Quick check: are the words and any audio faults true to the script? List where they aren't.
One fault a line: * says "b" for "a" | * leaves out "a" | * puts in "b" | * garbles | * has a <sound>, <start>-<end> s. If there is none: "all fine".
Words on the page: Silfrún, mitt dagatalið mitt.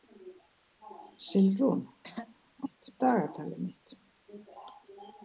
* has a throat clearing, 2.0-2.4 s